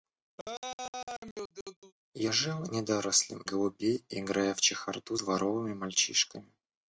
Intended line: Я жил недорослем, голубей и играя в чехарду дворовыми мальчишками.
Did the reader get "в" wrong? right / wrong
right